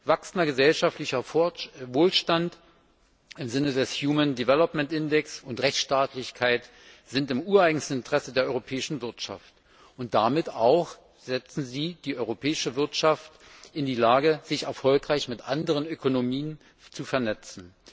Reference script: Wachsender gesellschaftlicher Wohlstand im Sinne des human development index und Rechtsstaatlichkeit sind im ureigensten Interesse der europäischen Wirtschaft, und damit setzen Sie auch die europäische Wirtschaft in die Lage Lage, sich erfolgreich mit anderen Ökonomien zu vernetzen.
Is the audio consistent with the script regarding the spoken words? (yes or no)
no